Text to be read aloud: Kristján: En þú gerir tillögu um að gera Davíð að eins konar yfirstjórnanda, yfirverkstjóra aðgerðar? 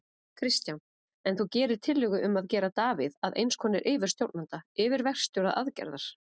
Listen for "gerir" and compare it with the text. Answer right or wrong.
right